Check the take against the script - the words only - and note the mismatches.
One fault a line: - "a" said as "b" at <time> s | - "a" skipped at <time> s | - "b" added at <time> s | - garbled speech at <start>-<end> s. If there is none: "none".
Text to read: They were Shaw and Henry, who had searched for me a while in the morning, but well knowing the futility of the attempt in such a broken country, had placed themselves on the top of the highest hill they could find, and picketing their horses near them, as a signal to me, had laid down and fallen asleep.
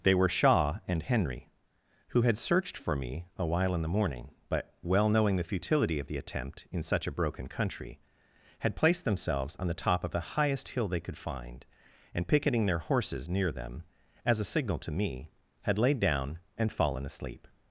none